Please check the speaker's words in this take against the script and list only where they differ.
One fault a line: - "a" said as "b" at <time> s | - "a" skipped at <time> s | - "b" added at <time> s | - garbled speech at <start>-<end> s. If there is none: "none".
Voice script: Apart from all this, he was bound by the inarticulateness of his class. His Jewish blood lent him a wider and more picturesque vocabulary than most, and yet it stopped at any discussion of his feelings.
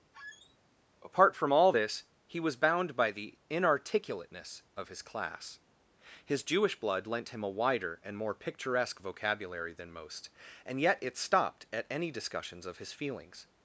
- "discussion" said as "discussions" at 12.1 s